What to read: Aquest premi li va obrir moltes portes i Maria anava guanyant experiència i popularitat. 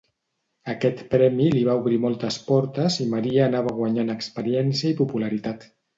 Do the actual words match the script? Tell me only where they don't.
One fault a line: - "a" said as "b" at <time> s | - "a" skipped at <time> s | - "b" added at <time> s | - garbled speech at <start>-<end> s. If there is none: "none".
none